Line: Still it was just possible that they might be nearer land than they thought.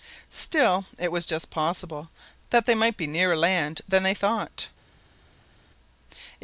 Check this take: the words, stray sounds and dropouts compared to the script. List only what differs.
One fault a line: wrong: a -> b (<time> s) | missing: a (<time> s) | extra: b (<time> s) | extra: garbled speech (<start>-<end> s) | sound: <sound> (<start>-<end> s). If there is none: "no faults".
no faults